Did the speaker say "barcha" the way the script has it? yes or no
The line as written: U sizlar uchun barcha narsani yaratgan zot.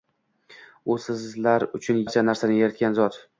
yes